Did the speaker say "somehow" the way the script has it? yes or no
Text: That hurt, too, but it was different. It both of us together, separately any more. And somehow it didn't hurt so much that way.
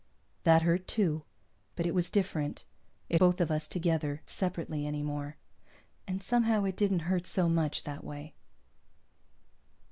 yes